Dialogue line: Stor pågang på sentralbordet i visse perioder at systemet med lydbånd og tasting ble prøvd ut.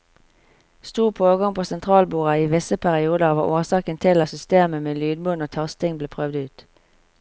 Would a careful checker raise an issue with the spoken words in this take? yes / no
yes